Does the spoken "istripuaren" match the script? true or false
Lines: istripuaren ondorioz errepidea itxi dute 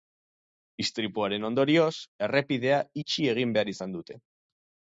true